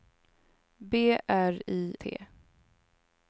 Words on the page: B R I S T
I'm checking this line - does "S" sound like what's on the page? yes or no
no